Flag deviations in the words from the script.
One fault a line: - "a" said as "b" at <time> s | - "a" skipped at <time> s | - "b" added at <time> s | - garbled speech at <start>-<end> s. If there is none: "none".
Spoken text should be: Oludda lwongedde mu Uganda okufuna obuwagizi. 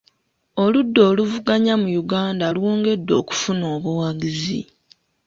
- "lwongedde" said as "oluvuganya" at 1.1 s
- "lwongedde" added at 2.5 s